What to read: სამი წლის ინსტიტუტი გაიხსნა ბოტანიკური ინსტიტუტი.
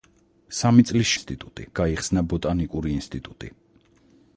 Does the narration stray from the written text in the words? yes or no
no